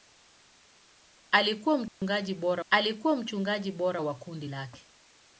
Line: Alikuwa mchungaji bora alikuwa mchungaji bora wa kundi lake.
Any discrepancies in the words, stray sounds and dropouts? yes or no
yes